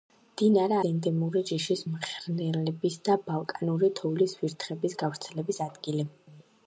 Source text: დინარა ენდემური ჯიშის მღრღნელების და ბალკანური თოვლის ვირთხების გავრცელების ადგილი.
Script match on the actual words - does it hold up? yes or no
yes